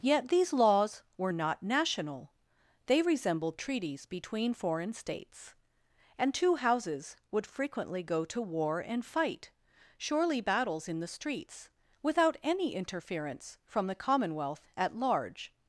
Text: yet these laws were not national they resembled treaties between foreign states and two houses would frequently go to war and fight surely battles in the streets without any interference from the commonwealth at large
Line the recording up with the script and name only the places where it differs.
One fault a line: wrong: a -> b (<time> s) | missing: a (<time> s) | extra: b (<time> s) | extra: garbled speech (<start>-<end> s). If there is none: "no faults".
no faults